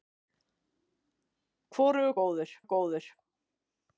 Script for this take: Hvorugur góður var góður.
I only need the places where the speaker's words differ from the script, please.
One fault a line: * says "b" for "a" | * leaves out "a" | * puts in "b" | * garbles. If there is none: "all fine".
all fine